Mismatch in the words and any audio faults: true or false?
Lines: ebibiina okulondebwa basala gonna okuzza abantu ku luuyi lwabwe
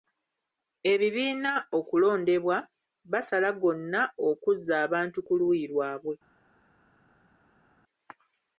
false